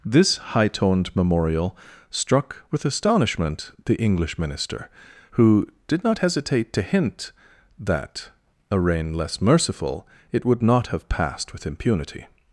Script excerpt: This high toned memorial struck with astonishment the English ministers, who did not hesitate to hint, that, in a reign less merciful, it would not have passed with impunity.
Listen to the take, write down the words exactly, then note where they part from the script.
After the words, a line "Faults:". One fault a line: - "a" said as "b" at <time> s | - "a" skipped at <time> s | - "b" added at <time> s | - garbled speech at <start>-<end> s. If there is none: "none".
This high toned memorial struck with astonishment the English minister, who did not hesitate to hint, that, a reign less merciful, it would not have passed with impunity.
Faults:
- "ministers" said as "minister" at 4.4 s
- "in" skipped at 8.3 s